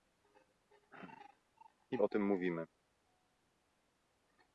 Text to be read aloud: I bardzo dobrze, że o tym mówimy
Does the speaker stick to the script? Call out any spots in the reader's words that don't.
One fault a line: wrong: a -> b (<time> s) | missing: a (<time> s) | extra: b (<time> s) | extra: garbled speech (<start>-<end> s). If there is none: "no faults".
missing: bardzo dobrze że (2.0 s)